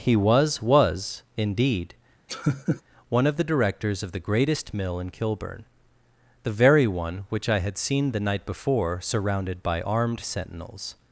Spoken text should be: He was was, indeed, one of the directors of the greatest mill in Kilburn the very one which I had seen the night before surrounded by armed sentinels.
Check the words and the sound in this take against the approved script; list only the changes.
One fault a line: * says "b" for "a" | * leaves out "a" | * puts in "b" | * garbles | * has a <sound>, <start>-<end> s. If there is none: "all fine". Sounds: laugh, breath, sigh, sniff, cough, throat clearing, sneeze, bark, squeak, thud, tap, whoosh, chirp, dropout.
* has a laugh, 2.3-2.8 s